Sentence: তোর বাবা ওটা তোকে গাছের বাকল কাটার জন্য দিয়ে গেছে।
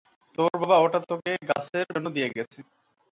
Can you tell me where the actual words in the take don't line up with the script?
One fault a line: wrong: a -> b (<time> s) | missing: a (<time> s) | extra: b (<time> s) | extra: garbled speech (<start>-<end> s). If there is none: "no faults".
missing: বাকল কাটার (1.9 s)